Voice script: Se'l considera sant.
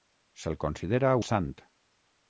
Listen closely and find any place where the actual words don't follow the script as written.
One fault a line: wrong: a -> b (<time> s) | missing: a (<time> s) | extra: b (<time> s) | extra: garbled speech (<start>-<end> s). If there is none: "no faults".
no faults